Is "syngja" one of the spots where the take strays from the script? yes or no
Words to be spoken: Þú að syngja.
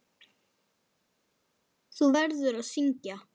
no